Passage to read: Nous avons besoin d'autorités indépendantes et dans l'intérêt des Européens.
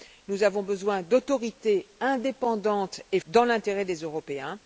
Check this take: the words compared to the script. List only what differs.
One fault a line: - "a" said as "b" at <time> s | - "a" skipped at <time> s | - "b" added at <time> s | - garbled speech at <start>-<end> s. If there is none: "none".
none